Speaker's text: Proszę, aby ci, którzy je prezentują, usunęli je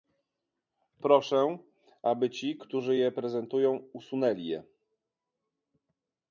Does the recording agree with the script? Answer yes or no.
yes